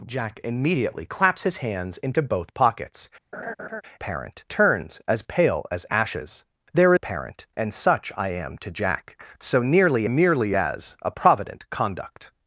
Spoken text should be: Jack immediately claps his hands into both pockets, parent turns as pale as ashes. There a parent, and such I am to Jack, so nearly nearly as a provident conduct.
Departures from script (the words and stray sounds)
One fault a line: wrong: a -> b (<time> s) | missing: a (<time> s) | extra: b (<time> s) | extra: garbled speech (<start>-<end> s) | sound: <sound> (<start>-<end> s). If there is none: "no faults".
sound: laugh (3.3-3.8 s)